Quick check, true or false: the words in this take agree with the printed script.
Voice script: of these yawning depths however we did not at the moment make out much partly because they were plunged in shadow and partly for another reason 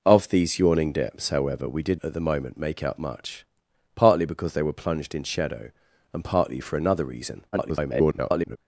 false